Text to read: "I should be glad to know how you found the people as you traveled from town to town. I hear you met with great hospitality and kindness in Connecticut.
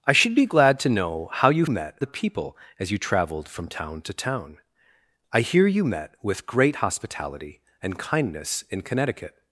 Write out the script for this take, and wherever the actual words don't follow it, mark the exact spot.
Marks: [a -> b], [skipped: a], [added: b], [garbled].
"I should be glad to know how you [found -> met] the people as you traveled from town to town. I hear you met with great hospitality and kindness in Connecticut.